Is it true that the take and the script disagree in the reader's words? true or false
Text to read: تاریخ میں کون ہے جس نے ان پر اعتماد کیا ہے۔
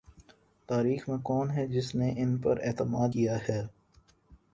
false